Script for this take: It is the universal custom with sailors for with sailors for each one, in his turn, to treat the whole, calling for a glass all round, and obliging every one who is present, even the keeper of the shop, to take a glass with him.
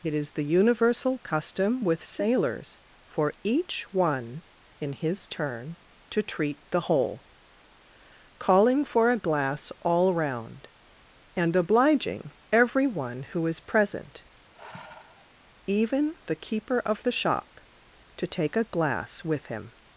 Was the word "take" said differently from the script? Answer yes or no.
no